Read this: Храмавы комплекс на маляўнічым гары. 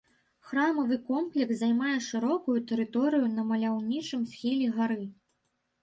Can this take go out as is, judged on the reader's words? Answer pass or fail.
fail